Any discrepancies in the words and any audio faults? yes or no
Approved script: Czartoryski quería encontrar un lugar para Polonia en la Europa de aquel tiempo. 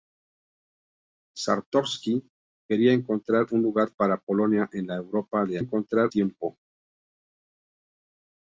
yes